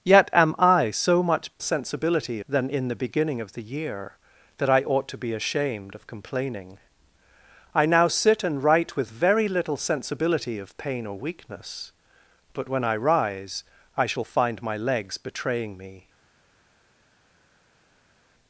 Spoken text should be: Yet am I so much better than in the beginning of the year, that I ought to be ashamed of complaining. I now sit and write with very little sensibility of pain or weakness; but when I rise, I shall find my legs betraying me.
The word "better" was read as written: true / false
false